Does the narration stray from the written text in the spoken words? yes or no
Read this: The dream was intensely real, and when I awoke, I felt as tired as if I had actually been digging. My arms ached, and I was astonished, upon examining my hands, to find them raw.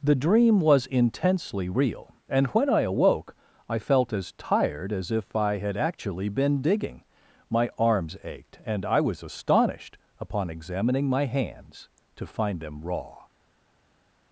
no